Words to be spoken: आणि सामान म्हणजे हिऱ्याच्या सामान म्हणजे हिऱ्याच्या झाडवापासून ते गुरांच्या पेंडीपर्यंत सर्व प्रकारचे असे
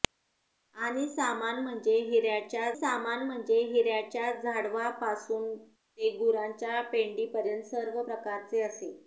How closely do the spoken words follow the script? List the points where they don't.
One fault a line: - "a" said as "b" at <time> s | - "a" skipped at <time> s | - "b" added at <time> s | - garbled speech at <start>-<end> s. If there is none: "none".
none